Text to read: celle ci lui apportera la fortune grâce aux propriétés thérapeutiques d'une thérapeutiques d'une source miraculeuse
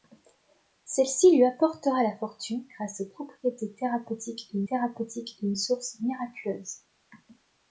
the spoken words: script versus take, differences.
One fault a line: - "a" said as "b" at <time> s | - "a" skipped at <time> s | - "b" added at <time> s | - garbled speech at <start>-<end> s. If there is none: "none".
none